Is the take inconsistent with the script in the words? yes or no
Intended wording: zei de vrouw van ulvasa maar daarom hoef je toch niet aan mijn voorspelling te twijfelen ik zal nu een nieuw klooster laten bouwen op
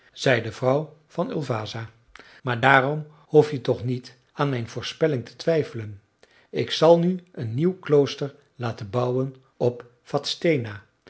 no